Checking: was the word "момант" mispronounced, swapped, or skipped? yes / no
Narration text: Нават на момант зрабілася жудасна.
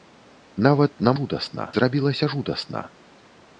yes